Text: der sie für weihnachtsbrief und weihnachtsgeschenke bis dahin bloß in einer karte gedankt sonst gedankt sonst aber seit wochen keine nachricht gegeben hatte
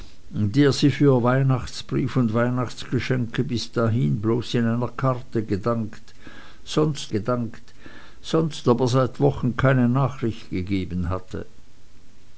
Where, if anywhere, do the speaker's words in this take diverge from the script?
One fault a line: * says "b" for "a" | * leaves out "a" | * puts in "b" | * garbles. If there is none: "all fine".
all fine